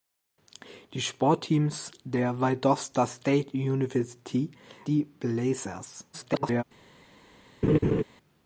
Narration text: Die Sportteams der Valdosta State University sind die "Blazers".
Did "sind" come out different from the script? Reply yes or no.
yes